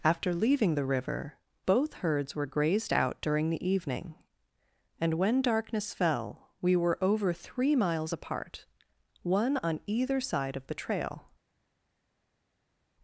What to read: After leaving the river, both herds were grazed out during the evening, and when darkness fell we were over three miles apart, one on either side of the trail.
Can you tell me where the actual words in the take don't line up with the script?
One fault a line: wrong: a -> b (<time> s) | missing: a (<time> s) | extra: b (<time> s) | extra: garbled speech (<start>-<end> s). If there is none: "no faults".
no faults